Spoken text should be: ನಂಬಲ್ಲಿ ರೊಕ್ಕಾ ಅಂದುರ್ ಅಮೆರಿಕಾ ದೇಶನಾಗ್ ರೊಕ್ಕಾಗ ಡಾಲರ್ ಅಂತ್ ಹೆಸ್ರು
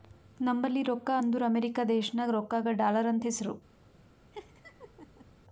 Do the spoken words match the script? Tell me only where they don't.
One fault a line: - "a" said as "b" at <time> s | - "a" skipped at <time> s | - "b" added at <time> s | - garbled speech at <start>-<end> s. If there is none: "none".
none